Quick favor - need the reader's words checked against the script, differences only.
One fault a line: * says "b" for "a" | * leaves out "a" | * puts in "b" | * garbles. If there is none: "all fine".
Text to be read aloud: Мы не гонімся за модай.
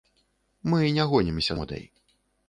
* leaves out "за"